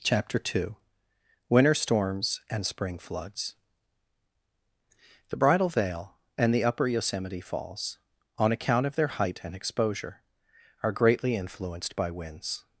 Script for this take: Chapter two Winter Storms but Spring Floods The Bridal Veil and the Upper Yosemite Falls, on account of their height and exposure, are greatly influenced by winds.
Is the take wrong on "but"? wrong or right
wrong